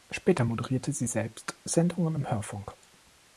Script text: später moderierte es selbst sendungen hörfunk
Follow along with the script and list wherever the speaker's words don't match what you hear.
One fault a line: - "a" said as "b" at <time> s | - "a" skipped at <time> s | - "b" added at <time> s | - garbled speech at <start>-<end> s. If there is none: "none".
- "es" said as "sie" at 0.9 s
- "im" added at 2.1 s